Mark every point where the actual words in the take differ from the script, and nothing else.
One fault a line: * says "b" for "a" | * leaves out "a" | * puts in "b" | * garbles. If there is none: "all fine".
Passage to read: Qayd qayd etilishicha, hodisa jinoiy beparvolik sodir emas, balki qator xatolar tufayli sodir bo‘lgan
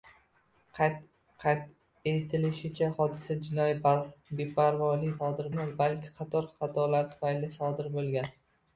all fine